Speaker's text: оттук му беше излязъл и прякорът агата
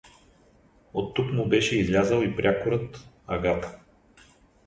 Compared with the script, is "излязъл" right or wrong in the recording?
right